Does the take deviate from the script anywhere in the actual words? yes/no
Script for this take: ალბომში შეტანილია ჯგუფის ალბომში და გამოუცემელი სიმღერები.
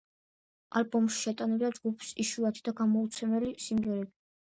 yes